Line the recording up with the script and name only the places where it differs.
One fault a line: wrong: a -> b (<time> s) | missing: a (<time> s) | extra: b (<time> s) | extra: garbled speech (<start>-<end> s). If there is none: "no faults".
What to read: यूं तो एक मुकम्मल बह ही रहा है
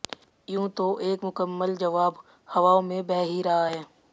extra: जवाब हवाओं में (1.8 s)